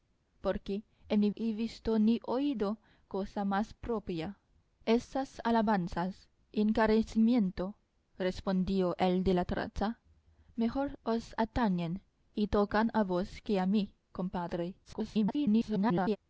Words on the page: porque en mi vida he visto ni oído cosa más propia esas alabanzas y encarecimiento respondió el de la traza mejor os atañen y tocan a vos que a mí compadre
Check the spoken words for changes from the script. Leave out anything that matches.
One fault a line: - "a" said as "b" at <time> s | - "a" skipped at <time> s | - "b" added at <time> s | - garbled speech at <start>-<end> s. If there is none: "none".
- "vida" skipped at 1.3 s
- garbled speech at 14.8-16.2 s